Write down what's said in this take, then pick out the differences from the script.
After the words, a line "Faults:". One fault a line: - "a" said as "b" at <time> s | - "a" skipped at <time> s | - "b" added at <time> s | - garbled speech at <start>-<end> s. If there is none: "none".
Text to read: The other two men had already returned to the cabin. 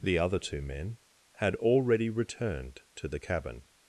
The other two men had already returned to the cabin.
Faults:
none